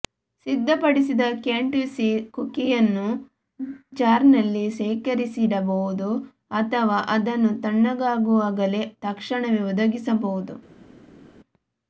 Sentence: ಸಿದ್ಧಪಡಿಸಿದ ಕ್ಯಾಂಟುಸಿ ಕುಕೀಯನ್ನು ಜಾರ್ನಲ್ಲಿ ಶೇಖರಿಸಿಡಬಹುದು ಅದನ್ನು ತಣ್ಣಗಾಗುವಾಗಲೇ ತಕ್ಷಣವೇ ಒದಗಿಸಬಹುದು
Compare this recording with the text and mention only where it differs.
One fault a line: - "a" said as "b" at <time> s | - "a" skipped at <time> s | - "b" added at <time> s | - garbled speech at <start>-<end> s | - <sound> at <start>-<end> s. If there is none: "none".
- "ಅಥವಾ" added at 6.5 s